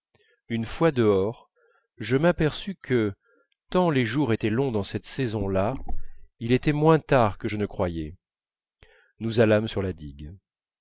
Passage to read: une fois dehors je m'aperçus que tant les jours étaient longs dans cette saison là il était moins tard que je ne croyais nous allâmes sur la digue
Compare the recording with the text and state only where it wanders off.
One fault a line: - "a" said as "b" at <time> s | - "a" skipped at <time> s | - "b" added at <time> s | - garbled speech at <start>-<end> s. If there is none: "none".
none